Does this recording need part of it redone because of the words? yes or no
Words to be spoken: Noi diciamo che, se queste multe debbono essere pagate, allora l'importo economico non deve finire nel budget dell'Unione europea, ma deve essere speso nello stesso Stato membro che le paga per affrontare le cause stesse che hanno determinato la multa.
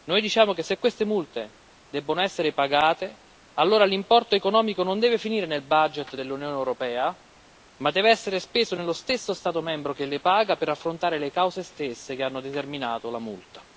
no